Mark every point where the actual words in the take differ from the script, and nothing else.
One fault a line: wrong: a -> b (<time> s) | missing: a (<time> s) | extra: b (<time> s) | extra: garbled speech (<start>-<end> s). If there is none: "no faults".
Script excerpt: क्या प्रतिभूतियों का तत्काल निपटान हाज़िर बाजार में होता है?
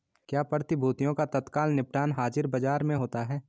no faults